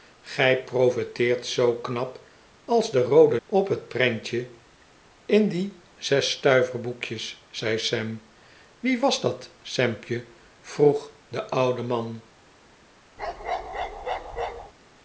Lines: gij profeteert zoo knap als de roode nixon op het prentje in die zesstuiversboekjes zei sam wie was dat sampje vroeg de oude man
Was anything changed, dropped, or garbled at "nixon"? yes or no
yes